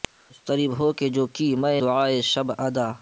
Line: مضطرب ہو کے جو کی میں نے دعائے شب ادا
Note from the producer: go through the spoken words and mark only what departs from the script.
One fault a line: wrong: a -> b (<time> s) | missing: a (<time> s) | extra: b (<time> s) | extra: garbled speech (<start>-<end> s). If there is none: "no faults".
missing: نے (1.8 s)